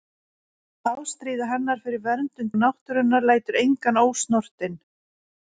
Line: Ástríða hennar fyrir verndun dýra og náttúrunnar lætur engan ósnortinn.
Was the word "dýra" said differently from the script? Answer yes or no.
yes